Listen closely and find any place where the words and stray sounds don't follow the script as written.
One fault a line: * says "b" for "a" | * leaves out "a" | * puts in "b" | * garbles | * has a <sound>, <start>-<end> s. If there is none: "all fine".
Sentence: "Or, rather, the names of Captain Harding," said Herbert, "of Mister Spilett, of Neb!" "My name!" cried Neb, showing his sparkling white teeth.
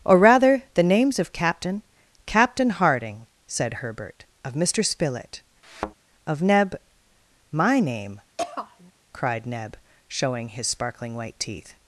* puts in "Captain"
* has a thud, 5.6-5.9 s
* has a throat clearing, 8.4-8.9 s